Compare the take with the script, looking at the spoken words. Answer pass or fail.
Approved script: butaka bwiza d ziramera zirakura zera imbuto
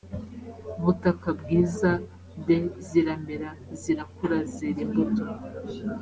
pass